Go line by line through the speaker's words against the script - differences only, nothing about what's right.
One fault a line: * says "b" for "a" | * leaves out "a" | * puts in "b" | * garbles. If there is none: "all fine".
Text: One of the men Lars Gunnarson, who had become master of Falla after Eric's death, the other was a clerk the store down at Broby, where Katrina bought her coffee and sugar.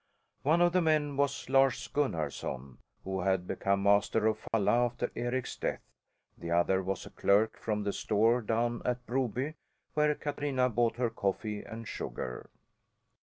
* puts in "was"
* puts in "from"